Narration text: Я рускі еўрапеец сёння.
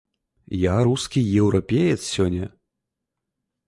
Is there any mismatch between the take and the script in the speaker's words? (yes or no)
no